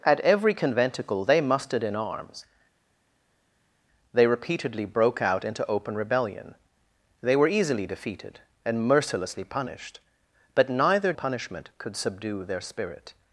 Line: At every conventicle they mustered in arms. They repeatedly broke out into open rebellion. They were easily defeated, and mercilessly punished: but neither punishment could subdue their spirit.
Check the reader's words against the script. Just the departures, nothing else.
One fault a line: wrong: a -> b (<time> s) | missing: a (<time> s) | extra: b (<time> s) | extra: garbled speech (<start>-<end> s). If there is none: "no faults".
no faults